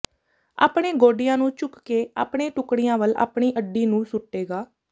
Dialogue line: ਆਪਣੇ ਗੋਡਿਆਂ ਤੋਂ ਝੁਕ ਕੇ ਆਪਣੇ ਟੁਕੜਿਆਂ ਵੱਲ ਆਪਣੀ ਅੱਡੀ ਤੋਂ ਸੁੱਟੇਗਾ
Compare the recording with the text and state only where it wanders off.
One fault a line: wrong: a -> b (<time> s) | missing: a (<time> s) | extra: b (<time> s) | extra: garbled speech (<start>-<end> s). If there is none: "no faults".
wrong: ਤੋਂ -> ਨੂੰ (1.4 s)
wrong: ਤੋਂ -> ਨੂੰ (3.9 s)